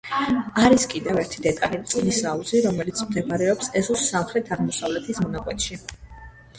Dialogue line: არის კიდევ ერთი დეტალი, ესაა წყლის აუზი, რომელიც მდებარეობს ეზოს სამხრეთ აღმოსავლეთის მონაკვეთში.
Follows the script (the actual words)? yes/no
no